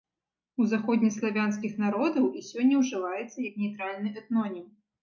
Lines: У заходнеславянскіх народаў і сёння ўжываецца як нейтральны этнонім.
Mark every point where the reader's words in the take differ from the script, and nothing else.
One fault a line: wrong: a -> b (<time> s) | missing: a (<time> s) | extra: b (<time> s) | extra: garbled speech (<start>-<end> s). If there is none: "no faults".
no faults